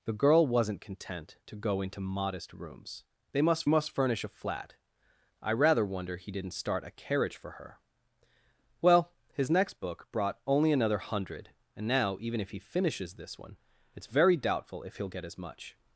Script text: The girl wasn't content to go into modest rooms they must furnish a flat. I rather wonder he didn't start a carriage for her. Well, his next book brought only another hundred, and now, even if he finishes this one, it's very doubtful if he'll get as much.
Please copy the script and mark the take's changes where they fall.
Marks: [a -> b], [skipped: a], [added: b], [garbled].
The girl wasn't content to go into modest rooms they must [added: must] furnish a flat. I rather wonder he didn't start a carriage for her. Well, his next book brought only another hundred, and now, even if he finishes this one, it's very doubtful if he'll get as much.